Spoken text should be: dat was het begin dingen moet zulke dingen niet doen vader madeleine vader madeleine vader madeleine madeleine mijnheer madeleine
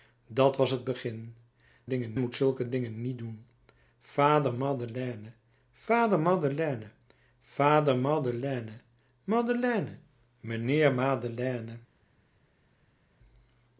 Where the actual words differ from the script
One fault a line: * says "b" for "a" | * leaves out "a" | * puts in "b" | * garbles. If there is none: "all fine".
all fine